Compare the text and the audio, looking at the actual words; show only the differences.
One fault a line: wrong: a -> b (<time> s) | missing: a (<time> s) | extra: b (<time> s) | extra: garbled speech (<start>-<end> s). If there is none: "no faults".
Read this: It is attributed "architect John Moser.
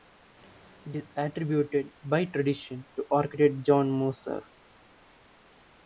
extra: by tradition to (2.0 s)